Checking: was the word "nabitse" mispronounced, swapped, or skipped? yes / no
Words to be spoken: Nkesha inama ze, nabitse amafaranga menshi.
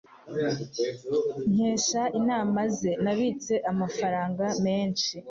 no